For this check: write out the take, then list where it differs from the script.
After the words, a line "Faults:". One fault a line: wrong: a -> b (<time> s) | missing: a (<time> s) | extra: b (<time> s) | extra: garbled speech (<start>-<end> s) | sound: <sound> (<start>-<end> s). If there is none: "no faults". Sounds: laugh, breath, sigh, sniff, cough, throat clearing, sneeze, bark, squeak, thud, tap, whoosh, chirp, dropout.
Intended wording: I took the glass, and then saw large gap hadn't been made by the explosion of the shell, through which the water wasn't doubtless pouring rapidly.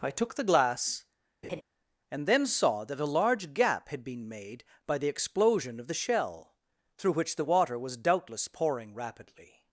I took the glass, and then saw that a large gap had been made by the explosion of the shell, through which the water was doubtless pouring rapidly.
Faults:
sound: laugh (1.4-1.6 s)
extra: that a (2.8 s)
wrong: hadn't -> had (3.9 s)
wrong: wasn't -> was (7.8 s)